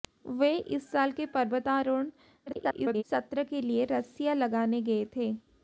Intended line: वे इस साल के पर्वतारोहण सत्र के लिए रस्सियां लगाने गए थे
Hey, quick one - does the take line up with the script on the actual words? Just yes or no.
no